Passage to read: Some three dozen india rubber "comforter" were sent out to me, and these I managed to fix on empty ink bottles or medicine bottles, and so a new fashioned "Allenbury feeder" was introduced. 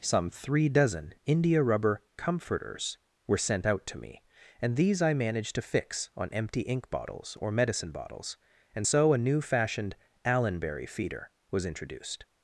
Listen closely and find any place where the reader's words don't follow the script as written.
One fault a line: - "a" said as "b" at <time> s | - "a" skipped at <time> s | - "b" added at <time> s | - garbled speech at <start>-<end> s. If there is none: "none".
- "comforter" said as "comforters" at 2.2 s